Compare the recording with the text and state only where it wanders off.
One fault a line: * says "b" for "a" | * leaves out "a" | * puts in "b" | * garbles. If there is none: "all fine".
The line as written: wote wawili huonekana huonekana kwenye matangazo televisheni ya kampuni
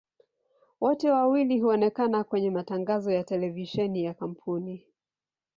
* leaves out "huonekana"
* puts in "ya"